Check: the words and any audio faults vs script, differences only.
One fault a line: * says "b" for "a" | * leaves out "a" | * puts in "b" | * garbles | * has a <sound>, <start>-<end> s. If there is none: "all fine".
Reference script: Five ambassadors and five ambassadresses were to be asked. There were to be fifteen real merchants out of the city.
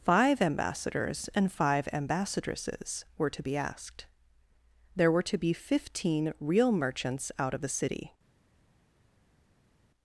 all fine